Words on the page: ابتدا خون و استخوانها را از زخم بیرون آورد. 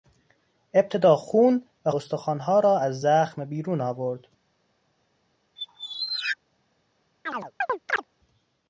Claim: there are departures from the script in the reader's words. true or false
false